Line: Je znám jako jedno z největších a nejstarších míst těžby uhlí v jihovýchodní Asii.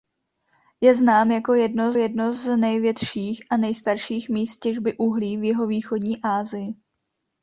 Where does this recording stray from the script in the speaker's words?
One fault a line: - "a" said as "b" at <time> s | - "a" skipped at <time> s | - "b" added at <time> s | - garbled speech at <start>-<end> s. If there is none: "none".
- "jedno" added at 1.9 s